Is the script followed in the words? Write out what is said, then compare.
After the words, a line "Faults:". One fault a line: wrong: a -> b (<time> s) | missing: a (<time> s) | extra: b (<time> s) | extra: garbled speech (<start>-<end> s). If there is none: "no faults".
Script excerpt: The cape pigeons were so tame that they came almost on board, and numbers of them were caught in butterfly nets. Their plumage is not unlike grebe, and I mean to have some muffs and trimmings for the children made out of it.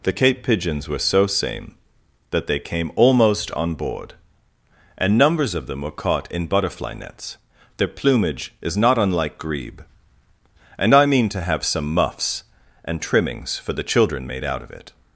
The cape pigeons were so same that they came almost on board, and numbers of them were caught in butterfly nets. Their plumage is not unlike grebe, and I mean to have some muffs and trimmings for the children made out of it.
Faults:
wrong: tame -> same (1.3 s)